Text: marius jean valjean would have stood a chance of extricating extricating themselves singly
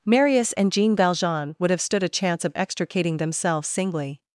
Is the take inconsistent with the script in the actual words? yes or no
yes